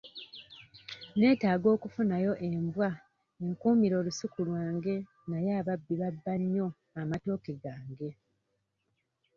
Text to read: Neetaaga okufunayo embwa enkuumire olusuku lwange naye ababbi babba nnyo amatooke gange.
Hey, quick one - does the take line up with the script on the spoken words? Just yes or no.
yes